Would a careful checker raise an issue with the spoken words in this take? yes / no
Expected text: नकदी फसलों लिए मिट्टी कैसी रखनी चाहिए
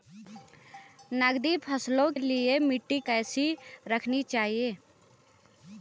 no